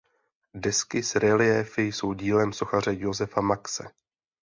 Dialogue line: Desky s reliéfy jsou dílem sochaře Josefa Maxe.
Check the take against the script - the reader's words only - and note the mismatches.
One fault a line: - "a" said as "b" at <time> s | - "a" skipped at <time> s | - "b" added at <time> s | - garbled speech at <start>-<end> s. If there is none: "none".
none